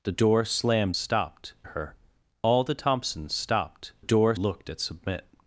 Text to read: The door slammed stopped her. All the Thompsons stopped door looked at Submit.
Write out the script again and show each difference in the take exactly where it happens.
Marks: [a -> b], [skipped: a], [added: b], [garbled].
The door slammed stopped her. All the Thompsons stopped door looked at Submit.